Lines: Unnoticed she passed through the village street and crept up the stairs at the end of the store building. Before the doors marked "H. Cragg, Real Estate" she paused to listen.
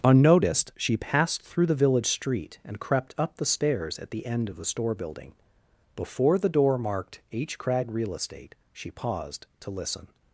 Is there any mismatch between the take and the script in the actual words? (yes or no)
yes